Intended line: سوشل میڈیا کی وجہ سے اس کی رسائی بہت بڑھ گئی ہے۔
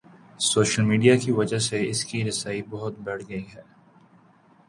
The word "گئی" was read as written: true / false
true